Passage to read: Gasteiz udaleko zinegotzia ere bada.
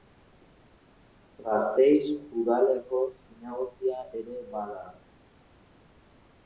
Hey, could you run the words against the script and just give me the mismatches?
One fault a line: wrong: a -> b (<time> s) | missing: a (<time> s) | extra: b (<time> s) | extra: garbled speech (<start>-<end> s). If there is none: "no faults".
no faults